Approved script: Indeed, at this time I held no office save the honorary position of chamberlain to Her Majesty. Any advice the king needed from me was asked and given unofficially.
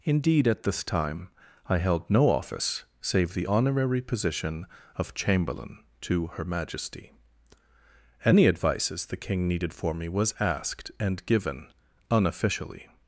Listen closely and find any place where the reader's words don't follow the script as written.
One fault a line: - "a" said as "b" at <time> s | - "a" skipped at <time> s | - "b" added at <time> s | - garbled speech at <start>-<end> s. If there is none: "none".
- "advice" said as "advices" at 8.5 s
- "from" said as "for" at 9.7 s